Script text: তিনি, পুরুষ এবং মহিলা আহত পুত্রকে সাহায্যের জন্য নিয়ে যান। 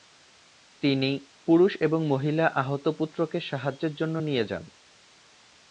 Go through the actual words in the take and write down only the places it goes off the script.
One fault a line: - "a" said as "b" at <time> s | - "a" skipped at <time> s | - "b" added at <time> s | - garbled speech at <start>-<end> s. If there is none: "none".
none